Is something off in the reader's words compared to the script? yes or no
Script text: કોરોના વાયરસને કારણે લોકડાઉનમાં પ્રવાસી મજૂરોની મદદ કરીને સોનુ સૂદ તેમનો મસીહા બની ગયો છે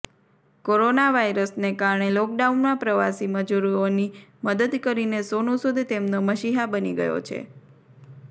no